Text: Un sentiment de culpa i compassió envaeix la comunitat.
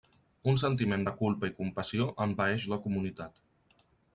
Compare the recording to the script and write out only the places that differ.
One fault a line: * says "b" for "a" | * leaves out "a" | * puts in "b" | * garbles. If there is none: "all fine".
all fine